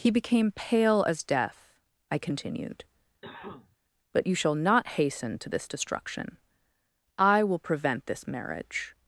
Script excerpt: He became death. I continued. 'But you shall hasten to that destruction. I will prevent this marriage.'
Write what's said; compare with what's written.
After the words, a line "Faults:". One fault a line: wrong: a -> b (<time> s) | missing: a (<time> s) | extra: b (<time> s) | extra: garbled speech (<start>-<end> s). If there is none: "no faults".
He became pale as death. I continued. 'But you shall not hasten to this destruction. I will prevent this marriage.'
Faults:
extra: pale as (0.5 s)
extra: not (4.5 s)
wrong: that -> this (5.5 s)